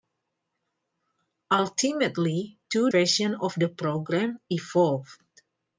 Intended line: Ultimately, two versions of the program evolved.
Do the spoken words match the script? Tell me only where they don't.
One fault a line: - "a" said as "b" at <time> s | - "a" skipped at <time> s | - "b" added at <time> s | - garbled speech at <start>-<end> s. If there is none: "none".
none